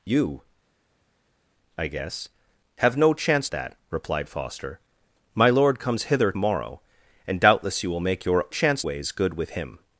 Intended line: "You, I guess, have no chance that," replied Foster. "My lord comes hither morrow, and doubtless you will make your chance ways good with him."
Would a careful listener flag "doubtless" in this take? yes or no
no